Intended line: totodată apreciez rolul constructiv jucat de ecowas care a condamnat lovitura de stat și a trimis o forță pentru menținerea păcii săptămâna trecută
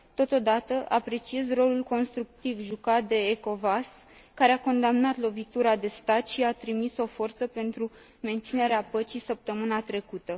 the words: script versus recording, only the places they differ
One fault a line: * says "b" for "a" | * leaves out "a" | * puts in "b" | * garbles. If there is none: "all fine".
all fine